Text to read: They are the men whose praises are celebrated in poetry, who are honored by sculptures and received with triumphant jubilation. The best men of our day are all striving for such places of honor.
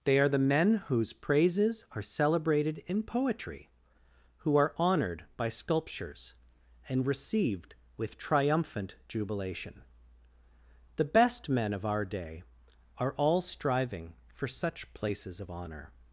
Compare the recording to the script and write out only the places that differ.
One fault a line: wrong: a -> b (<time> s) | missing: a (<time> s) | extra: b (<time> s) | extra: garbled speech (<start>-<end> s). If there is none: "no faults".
no faults